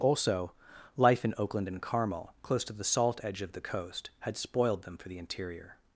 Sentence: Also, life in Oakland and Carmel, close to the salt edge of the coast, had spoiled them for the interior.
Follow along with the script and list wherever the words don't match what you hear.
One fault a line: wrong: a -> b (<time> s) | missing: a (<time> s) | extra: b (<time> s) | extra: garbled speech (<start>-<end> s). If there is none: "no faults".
no faults